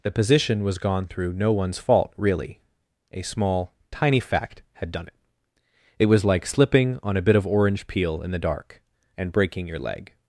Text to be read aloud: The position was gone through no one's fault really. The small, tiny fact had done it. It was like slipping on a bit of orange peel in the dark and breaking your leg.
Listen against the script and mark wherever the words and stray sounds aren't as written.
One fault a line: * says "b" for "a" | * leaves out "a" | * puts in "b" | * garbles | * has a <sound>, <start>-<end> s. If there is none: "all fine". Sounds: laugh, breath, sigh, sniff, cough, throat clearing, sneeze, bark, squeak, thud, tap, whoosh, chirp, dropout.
* says "A" for "The"